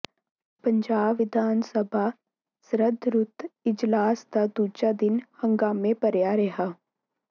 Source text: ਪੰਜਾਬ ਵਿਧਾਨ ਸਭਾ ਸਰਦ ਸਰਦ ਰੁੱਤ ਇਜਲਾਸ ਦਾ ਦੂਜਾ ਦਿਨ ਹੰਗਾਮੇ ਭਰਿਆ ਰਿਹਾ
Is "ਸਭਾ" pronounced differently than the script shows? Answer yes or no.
no